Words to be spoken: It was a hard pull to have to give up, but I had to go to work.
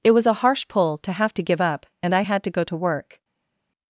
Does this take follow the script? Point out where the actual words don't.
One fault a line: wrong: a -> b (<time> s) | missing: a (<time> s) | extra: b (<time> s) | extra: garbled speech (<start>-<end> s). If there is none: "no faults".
wrong: hard -> harsh (0.3 s)
wrong: but -> and (2.0 s)